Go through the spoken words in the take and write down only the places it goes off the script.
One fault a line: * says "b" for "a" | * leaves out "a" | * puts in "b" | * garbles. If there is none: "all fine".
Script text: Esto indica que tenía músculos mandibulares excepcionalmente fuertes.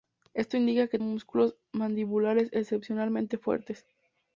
* leaves out "tenía"